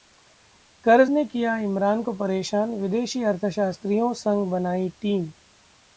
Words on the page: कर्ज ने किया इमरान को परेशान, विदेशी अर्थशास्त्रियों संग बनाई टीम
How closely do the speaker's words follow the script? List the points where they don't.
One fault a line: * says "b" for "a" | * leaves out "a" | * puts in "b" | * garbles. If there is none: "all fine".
all fine